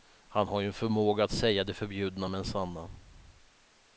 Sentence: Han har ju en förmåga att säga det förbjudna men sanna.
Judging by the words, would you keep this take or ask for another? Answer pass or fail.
pass